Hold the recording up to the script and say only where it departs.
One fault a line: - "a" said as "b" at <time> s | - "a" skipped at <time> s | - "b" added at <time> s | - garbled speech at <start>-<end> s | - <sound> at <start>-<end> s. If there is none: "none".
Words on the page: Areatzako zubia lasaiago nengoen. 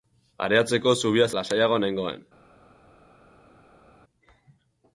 none